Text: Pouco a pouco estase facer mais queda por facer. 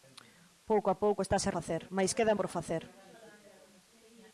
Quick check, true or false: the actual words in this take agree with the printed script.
true